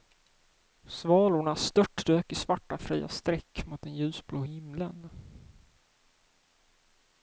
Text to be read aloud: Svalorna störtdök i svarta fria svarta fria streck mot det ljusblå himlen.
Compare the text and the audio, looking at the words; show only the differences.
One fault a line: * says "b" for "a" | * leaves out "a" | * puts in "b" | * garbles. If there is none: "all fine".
* leaves out "svarta fria"
* says "den" for "det"